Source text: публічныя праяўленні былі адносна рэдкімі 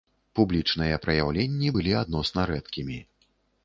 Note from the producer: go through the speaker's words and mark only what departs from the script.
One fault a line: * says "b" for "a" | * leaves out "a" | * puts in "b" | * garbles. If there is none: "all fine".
all fine